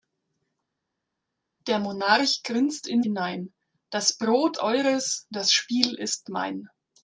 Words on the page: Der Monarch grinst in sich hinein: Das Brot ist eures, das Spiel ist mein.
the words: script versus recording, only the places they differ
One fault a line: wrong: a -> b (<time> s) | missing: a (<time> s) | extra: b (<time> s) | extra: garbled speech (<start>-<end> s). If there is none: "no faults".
missing: sich (3.0 s)
missing: ist (4.6 s)